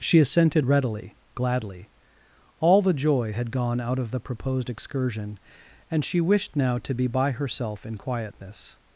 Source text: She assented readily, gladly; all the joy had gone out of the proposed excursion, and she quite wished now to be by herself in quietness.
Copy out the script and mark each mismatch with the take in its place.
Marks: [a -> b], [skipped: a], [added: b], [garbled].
She assented readily, gladly; all the joy had gone out of the proposed excursion, and she [skipped: quite] wished now to be by herself in quietness.